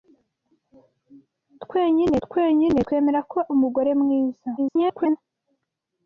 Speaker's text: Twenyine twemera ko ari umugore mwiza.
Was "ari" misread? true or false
true